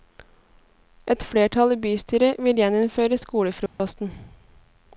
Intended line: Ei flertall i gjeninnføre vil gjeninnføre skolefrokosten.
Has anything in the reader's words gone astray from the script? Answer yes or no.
yes